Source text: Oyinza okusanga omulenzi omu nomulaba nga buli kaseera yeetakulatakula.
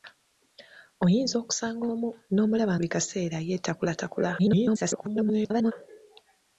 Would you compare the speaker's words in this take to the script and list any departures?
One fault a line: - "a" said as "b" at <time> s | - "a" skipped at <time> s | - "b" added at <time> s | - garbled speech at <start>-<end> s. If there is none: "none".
- "omulenzi" skipped at 1.8 s
- "nga" skipped at 2.7 s
- garbled speech at 4.4-5.7 s